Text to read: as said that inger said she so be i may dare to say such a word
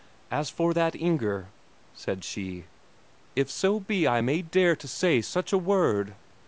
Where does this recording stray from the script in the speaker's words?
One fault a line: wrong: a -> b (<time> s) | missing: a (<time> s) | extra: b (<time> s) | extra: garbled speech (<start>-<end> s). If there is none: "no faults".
wrong: said -> for (0.5 s)
extra: if (3.4 s)